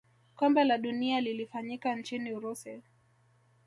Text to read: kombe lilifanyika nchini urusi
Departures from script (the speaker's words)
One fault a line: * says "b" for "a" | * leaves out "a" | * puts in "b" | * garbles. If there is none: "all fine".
* puts in "la dunia"